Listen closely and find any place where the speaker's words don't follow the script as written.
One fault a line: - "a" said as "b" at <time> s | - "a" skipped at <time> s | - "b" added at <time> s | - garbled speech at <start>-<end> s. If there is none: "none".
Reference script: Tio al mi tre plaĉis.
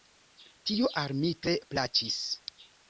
none